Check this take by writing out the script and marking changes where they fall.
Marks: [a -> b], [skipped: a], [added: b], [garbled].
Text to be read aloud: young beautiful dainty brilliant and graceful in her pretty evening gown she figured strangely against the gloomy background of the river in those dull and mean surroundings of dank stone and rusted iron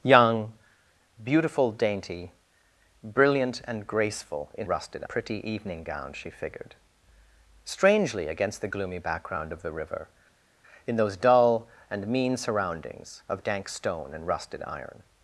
young beautiful dainty brilliant and graceful in [her -> rusted] pretty evening gown she figured strangely against the gloomy background of the river in those dull and mean surroundings of dank stone and rusted iron